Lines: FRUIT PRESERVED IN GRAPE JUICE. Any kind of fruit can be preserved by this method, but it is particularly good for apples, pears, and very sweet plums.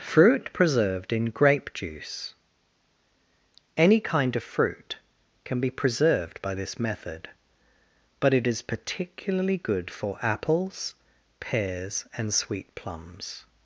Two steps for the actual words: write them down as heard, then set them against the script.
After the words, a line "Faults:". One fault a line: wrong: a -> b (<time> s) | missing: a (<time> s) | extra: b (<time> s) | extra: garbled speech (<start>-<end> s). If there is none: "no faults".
FRUIT PRESERVED IN GRAPE JUICE. Any kind of fruit can be preserved by this method, but it is particularly good for apples, pears, and sweet plums.
Faults:
missing: very (12.3 s)